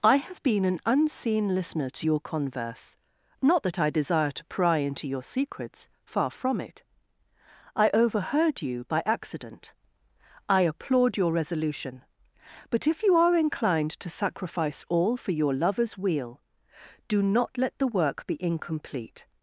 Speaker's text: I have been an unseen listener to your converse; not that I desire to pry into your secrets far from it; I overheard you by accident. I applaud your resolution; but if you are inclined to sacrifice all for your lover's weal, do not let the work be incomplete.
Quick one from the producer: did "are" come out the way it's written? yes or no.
yes